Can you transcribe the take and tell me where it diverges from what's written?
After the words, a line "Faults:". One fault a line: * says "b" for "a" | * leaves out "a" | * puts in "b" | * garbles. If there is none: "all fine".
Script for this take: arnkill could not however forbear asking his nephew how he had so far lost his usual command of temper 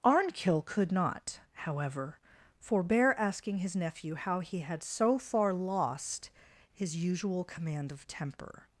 arnkill could not however forbear asking his nephew how he had so far lost his usual command of temper
Faults:
all fine